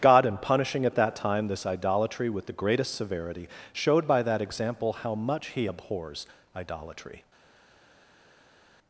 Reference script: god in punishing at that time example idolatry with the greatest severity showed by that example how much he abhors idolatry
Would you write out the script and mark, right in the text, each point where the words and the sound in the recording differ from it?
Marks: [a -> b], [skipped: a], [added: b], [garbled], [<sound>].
god in punishing at that time [example -> this] idolatry with the greatest severity showed by that example how much he abhors idolatry